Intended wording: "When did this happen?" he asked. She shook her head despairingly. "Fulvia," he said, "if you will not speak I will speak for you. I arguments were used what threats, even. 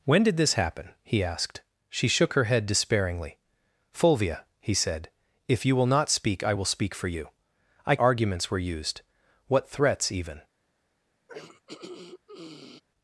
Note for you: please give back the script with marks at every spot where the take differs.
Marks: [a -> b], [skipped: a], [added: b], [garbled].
"When did this happen?" he asked. She shook her head despairingly. "Fulvia," he said, "if you will not speak I will speak for you. I arguments were used what threats, even.